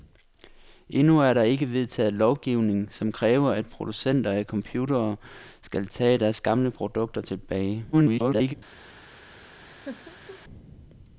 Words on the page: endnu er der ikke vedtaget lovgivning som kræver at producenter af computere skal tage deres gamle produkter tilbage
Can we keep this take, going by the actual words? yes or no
no